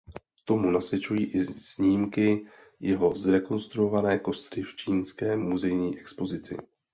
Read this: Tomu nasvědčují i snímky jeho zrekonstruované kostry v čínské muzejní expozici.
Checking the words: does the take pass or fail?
pass